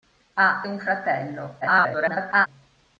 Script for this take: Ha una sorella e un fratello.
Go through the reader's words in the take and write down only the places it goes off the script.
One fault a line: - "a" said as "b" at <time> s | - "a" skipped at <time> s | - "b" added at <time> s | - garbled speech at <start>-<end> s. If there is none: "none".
- "una sorella e" skipped at 0.7 s
- garbled speech at 1.6-2.5 s